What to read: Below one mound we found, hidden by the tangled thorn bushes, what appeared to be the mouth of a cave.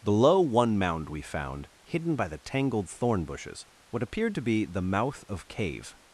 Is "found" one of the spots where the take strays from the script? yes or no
no